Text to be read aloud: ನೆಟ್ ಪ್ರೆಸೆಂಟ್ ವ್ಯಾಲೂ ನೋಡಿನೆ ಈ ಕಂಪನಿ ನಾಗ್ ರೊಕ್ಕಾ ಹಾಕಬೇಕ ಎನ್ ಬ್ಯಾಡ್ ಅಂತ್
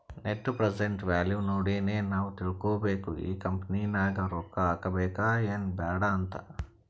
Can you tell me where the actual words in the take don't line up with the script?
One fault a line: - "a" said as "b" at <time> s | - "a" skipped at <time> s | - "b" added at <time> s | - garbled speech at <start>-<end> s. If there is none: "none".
- "ನಾವ್ ತಿಳ್ಕೋಬೇಕು" added at 2.1 s